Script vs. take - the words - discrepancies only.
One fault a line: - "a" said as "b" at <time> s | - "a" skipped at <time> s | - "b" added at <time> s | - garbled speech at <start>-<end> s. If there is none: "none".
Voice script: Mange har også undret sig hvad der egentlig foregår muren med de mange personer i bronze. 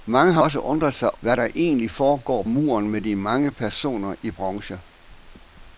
none